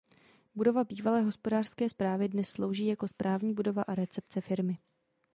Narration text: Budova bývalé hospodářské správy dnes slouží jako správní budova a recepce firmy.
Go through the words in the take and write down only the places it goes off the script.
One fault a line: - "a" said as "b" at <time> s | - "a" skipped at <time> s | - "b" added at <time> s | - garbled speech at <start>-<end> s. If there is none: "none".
none